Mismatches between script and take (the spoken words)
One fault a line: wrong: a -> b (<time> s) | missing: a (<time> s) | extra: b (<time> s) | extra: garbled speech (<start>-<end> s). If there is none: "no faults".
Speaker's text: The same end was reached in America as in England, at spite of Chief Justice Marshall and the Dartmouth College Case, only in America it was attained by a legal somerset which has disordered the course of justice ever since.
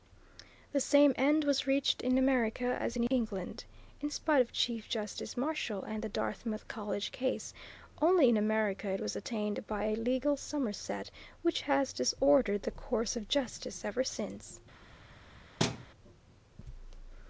wrong: at -> in (4.0 s)